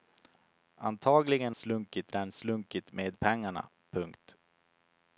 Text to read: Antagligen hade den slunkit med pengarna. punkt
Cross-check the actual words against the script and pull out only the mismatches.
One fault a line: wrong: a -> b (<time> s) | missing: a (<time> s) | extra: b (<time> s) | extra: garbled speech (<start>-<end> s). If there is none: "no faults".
wrong: hade -> slunkit (1.5 s)